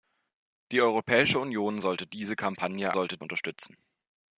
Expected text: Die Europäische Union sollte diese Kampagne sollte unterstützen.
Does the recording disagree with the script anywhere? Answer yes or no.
no